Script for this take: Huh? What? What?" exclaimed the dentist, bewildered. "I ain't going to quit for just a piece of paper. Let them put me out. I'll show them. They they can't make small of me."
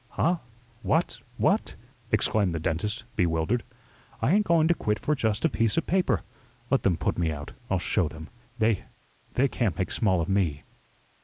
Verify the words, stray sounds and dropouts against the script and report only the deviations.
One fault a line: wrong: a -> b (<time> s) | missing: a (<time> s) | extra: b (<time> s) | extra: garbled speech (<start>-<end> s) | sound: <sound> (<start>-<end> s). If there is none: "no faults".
no faults